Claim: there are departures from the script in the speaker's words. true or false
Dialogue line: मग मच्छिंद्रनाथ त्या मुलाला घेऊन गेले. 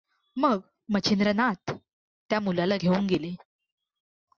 false